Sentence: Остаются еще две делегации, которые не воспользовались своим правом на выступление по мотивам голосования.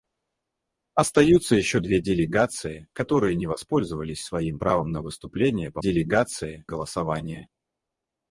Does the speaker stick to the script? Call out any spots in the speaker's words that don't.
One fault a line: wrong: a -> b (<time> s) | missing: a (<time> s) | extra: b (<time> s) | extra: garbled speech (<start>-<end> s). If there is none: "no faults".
wrong: мотивам -> делегации (5.8 s)